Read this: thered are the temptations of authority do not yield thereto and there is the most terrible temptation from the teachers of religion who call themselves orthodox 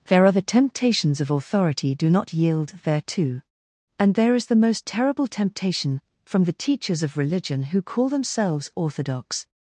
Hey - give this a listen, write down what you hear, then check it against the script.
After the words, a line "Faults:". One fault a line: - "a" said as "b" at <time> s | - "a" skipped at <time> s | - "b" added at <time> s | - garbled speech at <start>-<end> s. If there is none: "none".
there are the temptations of authority do not yield thereto and there is the most terrible temptation from the teachers of religion who call themselves orthodox
Faults:
- "thered" said as "there" at 0.1 s